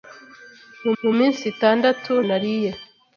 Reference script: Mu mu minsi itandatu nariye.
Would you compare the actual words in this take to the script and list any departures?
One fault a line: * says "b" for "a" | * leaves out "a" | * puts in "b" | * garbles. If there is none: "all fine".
all fine